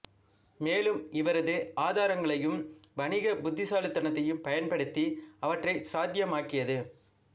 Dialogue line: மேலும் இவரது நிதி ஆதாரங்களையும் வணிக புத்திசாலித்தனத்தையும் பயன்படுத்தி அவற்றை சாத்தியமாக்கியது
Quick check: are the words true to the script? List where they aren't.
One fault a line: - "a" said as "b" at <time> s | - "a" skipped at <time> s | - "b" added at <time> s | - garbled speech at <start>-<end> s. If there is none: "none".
- "நிதி" skipped at 1.6 s